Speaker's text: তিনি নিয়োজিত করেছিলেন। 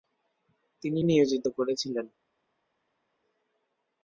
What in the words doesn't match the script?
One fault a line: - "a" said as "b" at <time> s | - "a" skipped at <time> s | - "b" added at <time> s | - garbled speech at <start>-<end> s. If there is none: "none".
none